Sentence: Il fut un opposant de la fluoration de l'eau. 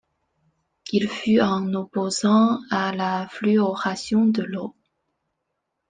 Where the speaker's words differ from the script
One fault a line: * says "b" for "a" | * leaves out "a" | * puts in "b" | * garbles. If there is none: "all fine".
* says "à" for "de"